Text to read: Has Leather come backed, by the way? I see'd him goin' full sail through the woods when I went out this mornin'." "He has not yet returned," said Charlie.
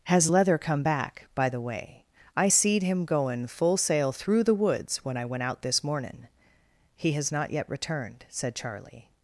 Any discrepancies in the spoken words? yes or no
yes